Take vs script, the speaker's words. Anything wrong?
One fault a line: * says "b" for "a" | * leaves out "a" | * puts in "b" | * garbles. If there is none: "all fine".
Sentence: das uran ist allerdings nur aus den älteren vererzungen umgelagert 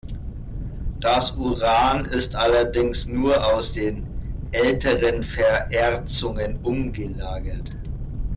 all fine